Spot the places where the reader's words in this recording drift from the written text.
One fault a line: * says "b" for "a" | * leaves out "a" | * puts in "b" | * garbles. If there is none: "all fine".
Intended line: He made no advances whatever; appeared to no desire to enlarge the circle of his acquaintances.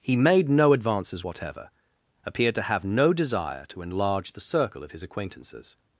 * puts in "have"